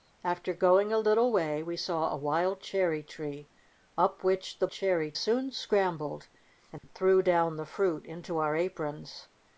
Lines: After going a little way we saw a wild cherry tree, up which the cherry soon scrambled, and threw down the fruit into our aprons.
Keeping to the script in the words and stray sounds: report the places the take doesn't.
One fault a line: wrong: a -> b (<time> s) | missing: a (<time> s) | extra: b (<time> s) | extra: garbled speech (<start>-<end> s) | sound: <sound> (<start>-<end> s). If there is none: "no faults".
sound: dropout (6.8-6.8 s)